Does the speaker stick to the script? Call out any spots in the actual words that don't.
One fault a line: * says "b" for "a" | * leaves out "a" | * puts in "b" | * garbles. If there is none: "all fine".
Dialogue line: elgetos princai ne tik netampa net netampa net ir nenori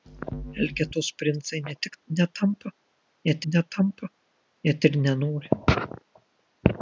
all fine